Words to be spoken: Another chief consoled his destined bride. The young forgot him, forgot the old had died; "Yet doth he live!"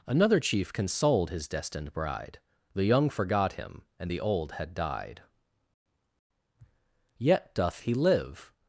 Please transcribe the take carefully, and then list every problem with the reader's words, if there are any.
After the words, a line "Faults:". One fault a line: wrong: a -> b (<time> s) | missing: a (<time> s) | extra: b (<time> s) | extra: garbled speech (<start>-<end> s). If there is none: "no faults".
Another chief consoled his destined bride. The young forgot him, and the old had died; "Yet doth he live!"
Faults:
wrong: forgot -> and (4.0 s)